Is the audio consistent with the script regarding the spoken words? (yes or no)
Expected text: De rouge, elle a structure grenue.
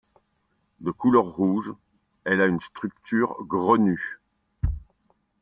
no